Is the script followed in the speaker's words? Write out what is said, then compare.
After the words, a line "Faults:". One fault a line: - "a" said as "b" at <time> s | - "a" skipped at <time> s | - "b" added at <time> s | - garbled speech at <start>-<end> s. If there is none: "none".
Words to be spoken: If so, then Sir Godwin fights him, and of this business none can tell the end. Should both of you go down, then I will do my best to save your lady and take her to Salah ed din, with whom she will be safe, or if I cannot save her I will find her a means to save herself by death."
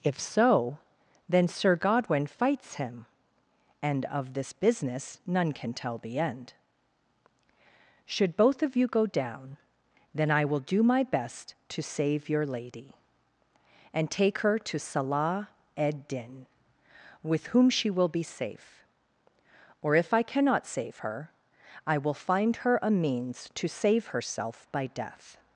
If so, then Sir Godwin fights him, and of this business none can tell the end. Should both of you go down, then I will do my best to save your lady and take her to Salah ed din, with whom she will be safe, or if I cannot save her I will find her a means to save herself by death."
Faults:
none